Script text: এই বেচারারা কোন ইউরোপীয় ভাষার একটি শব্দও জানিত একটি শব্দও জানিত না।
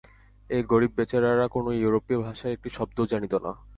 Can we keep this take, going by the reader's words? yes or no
no